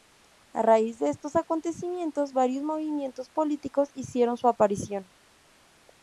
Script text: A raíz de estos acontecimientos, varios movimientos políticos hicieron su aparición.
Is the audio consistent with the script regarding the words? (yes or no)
yes